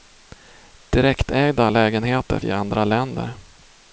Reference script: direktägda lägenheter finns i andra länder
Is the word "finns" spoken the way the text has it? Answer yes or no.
no